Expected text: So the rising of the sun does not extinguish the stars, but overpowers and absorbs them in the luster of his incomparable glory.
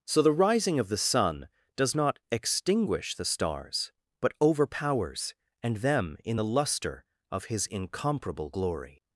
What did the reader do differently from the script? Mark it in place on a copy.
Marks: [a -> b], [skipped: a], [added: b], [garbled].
So the rising of the sun does not extinguish the stars, but overpowers and [skipped: absorbs] them in the luster of his incomparable glory.